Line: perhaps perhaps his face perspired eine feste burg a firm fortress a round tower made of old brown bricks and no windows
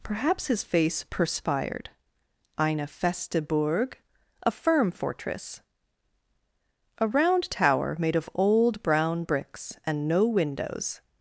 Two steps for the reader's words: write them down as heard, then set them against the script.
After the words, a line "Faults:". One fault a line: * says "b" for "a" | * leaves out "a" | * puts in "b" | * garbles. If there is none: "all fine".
perhaps his face perspired eine feste burg a firm fortress a round tower made of old brown bricks and no windows
Faults:
* leaves out "perhaps"